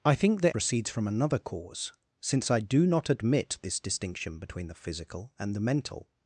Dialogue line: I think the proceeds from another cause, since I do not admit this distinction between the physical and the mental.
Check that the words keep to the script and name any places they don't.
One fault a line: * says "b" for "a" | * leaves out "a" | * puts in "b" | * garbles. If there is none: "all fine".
all fine